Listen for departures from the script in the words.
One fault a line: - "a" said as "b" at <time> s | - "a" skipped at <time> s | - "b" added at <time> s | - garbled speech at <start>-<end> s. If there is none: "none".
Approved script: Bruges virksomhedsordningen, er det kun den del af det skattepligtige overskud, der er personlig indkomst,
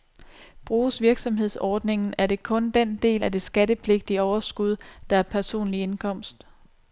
none